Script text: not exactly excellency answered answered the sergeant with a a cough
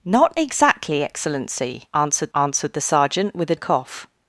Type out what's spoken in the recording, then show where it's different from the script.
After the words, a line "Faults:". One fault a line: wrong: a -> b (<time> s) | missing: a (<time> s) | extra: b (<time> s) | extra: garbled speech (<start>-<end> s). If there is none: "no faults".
not exactly excellency answered answered the sergeant with a a cough
Faults:
no faults